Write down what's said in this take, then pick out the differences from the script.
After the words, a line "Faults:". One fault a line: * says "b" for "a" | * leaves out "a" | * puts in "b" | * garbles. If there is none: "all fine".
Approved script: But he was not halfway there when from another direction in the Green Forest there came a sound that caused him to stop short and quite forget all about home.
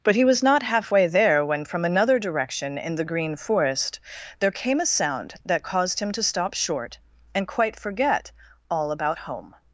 But he was not halfway there when from another direction in the Green Forest there came a sound that caused him to stop short and quite forget all about home.
Faults:
all fine